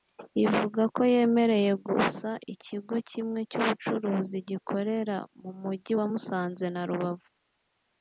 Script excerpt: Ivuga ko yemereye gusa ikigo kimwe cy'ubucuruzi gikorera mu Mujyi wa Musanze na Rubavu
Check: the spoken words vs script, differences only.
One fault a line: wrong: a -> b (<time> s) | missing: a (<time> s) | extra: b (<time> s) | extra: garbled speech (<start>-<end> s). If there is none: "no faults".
no faults